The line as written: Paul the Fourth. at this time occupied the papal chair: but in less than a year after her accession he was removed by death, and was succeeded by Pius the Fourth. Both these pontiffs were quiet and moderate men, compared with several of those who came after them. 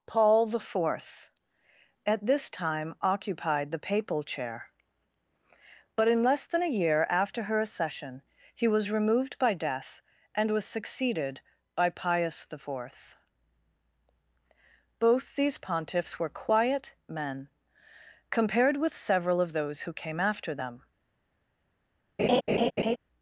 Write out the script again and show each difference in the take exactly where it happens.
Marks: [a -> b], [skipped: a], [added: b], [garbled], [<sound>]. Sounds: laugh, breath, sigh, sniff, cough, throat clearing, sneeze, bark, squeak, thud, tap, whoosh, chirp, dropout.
Paul the Fourth. at this time occupied the papal chair: but in less than a year after her accession he was removed by death, and was succeeded by Pius the Fourth. Both these pontiffs were quiet [skipped: and moderate] men, compared with several of those who came after them. [laugh]